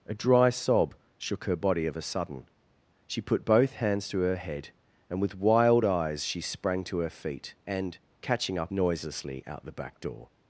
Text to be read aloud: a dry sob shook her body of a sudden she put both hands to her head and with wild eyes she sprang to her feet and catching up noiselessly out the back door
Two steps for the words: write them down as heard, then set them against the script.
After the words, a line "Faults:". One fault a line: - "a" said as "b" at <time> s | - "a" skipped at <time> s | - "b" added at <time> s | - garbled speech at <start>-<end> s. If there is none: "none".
a dry sob shook her body of a sudden she put both hands to her head and with wild eyes she sprang to her feet and catching up noiselessly out the back door
Faults:
none